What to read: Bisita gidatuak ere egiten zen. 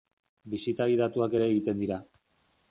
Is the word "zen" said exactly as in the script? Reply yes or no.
no